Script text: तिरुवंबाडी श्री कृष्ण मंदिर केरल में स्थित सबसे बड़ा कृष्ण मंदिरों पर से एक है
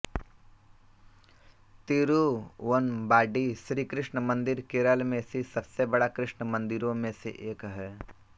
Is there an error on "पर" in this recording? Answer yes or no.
yes